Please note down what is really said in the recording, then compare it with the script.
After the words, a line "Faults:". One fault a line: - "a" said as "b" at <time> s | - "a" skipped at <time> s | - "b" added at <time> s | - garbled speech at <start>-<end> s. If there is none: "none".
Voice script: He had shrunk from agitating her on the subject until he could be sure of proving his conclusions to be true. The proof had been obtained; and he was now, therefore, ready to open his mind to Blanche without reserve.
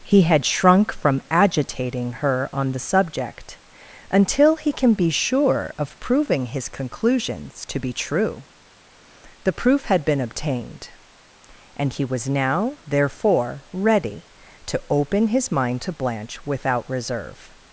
He had shrunk from agitating her on the subject until he can be sure of proving his conclusions to be true. The proof had been obtained; and he was now, therefore, ready to open his mind to Blanche without reserve.
Faults:
- "could" said as "can" at 4.7 s